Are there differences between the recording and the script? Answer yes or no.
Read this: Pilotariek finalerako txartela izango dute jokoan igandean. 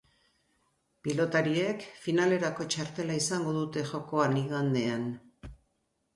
no